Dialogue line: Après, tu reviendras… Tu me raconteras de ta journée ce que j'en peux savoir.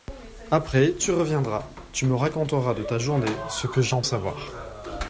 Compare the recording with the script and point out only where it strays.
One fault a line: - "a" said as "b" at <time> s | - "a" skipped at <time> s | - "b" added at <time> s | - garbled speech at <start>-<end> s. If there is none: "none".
- "peux" skipped at 4.0 s